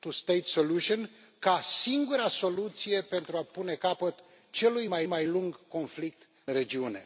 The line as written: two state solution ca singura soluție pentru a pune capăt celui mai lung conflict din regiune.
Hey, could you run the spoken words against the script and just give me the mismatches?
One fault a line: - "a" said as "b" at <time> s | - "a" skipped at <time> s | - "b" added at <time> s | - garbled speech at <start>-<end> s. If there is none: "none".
- "mai" added at 5.0 s
- "din" skipped at 6.3 s